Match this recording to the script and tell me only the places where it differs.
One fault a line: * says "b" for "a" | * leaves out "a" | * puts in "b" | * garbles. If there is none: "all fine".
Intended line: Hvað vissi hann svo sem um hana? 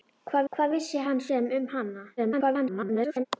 * puts in "hvað"
* leaves out "svo"
* garbles